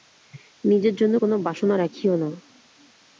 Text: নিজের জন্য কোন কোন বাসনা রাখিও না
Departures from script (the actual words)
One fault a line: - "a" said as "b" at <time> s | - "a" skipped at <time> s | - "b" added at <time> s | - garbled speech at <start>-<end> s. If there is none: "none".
- "কোন" skipped at 1.3 s